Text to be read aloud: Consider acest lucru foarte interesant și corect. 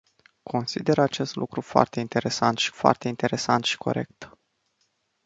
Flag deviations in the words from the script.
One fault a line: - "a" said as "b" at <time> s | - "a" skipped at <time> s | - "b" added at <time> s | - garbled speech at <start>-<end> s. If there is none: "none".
- "foarte interesant și" added at 2.7 s